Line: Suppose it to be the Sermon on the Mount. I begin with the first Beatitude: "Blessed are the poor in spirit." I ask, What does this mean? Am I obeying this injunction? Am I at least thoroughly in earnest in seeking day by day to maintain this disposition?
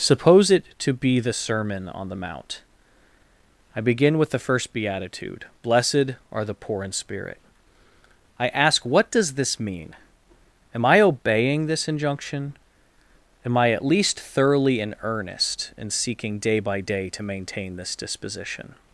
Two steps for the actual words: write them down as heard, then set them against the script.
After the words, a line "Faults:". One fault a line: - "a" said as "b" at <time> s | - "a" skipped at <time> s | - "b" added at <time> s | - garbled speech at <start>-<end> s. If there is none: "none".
Suppose it to be the Sermon on the Mount. I begin with the first Beatitude: "Blessed are the poor in spirit." I ask, What does this mean? Am I obeying this injunction? Am I at least thoroughly in earnest in seeking day by day to maintain this disposition?
Faults:
none